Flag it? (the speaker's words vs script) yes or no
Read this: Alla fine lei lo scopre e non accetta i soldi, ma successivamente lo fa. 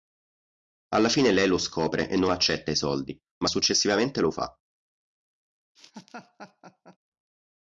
no